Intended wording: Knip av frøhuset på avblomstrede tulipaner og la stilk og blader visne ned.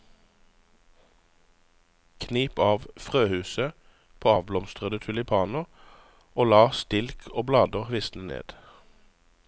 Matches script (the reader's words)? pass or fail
pass